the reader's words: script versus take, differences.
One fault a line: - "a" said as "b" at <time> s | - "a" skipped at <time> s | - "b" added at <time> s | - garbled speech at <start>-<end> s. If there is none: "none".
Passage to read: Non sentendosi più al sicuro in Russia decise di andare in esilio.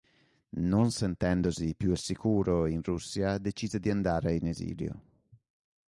none